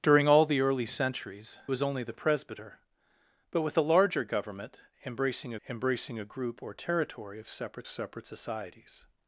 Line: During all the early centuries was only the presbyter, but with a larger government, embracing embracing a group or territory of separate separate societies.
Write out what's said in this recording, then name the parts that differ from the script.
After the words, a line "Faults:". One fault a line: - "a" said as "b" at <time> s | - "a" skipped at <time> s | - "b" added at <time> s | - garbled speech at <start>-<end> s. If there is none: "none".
During all the early centuries was only the presbyter, but with a larger government, embracing embracing a group or territory of separate separate societies.
Faults:
none